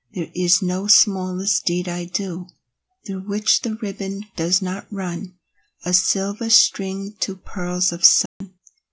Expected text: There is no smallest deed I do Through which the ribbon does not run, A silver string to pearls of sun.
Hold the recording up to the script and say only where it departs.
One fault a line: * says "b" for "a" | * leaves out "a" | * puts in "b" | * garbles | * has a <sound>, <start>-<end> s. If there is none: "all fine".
* has a dropout, 8.3-8.4 s